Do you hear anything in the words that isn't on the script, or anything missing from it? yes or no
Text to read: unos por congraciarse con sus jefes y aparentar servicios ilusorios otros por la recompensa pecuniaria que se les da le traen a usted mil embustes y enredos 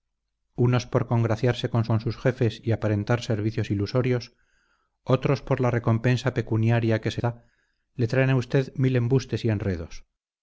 yes